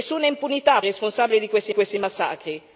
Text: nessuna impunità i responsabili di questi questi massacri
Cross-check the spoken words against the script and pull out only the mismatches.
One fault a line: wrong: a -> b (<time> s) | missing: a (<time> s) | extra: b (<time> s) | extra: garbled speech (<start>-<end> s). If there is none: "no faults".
no faults